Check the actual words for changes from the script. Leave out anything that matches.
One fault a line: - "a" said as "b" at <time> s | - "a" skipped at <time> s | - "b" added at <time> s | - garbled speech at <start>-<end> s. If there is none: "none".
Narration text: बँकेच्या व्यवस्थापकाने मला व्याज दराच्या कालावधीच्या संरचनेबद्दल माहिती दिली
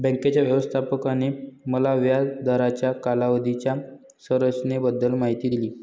none